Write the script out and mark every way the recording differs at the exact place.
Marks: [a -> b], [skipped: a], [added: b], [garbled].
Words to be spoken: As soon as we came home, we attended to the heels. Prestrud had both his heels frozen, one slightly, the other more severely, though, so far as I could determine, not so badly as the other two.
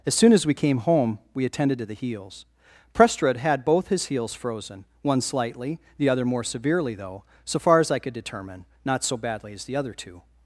As soon as we came home, we attended to the heels. Prestrud had both his heels frozen, one slightly, the other more severely, though, so far as I could determine, not so badly as the other two.